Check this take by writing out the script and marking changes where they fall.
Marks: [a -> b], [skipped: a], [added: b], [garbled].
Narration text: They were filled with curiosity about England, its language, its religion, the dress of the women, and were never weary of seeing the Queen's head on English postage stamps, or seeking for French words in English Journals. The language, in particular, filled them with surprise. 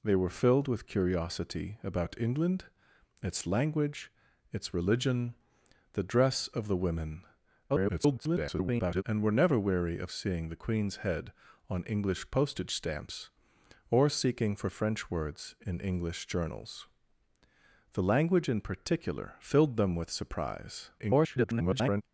They were filled with curiosity about England, its language, its religion, the dress of the women, [garbled] and were never weary of seeing the Queen's head on English postage stamps, or seeking for French words in English Journals. The language, in particular, filled them with surprise. [garbled]